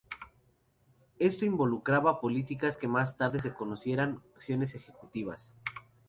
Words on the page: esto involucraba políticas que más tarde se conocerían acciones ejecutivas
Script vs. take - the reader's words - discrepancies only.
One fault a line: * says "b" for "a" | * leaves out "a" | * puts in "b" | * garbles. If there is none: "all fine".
all fine